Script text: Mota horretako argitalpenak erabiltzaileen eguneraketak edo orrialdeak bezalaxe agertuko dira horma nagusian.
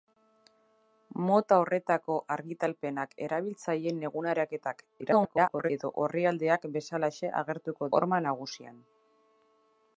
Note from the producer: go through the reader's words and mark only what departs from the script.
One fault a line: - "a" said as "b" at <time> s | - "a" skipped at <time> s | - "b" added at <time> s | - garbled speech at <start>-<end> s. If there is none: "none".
- garbled speech at 5.0-5.7 s
- "dira" skipped at 7.9 s